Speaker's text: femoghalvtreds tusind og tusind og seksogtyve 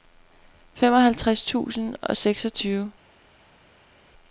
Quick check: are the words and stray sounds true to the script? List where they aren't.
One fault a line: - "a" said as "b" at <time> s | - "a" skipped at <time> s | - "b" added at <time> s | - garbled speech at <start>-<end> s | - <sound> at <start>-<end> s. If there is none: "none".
- "tusind og" skipped at 2.2 s